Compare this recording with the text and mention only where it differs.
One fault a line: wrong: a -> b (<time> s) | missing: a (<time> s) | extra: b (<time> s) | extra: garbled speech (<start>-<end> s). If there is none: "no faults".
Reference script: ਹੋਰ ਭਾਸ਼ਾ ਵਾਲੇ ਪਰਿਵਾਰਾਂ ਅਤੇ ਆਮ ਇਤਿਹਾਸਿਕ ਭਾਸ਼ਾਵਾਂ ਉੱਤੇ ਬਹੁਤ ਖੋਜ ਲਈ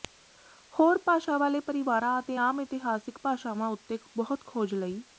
no faults